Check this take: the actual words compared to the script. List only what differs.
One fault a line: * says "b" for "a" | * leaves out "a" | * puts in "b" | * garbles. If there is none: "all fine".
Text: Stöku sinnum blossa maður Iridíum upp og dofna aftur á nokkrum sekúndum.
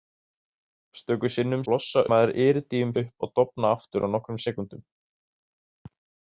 all fine